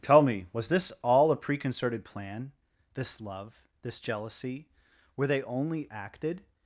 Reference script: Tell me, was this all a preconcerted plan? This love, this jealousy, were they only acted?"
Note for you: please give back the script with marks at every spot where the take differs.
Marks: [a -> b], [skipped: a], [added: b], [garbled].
Tell me, was this all a preconcerted plan? This love, this jealousy, were they only acted?"